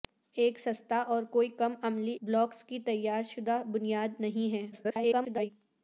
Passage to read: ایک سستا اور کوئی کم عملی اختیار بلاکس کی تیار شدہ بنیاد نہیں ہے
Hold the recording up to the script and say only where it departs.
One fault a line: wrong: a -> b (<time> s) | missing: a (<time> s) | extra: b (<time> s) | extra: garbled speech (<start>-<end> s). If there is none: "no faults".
missing: اختیار (2.2 s)
extra: garbled speech (4.7-5.5 s)